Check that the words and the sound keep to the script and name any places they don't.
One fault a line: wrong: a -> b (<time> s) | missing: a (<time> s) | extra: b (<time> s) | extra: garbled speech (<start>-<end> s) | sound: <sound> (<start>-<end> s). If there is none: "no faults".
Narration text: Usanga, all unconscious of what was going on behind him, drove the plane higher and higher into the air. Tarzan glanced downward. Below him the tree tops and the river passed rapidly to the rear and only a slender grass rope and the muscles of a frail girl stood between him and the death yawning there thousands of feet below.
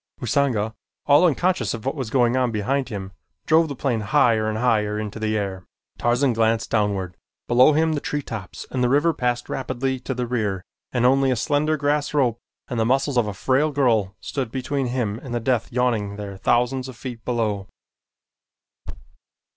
sound: thud (18.9-19.2 s)